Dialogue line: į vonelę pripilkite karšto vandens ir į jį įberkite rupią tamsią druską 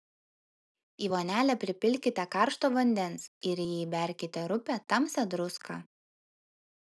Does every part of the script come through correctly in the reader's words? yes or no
yes